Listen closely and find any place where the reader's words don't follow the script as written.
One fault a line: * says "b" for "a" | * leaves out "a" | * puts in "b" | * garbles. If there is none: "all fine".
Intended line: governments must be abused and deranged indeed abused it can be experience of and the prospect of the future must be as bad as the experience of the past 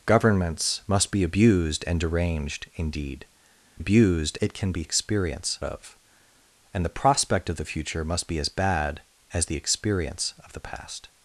all fine